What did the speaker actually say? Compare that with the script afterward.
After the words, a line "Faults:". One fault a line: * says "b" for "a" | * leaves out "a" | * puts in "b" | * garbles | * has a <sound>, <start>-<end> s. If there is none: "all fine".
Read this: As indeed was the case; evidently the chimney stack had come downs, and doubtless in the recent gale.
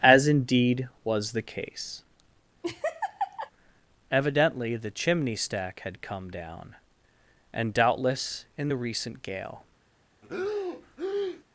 As indeed was the case; evidently the chimney stack had come down, and doubtless in the recent gale.
Faults:
* has a laugh, 2.6-3.5 s
* says "down" for "downs"
* has a breath, 10.2-11.4 s